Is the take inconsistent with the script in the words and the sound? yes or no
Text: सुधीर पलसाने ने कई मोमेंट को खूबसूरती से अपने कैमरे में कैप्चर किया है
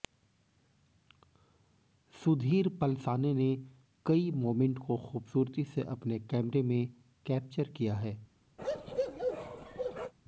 yes